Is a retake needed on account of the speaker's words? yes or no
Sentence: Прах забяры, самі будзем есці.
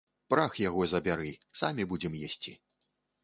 yes